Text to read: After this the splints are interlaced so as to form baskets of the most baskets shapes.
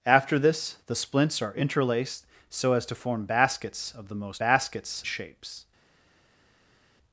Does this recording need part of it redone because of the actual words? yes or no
no